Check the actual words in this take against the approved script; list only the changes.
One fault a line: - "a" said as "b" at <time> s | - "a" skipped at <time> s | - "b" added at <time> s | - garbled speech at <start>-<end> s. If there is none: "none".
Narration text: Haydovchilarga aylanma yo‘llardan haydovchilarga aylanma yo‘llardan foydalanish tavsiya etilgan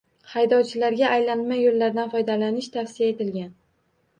- "haydovchilarga aylanma yo‘llardan" skipped at 2.1 s